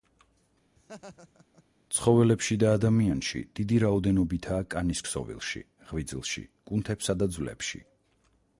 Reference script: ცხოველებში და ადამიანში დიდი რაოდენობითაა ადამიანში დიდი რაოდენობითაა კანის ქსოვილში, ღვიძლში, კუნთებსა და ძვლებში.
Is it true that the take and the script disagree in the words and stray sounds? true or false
true